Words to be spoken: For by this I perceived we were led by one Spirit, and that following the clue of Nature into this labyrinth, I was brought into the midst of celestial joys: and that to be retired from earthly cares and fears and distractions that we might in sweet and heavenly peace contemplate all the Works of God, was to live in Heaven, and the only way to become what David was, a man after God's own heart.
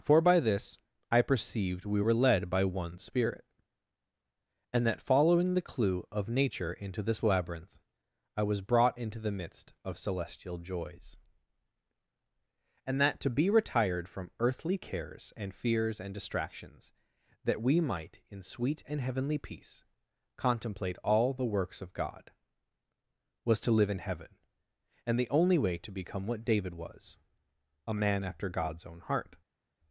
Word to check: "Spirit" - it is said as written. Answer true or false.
true